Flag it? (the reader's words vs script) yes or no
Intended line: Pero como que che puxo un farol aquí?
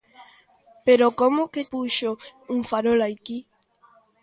yes